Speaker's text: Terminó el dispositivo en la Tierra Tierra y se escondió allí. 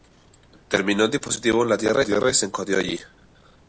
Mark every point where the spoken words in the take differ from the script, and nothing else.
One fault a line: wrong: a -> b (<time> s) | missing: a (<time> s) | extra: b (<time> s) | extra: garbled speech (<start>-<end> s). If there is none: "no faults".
no faults